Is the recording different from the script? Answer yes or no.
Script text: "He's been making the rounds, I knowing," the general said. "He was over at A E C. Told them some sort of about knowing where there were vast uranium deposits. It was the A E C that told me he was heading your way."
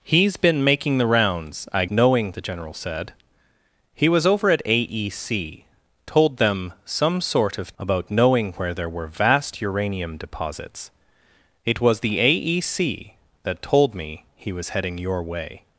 no